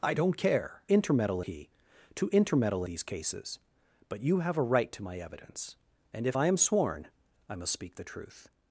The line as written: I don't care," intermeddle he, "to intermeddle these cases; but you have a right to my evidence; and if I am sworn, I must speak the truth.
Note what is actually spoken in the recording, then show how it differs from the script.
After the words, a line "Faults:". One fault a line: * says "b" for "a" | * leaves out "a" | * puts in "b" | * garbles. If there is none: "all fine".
I don't care," intermeddle he, "to intermeddle these cases; but you have a right to my evidence; and if I am sworn, I must speak the truth.
Faults:
all fine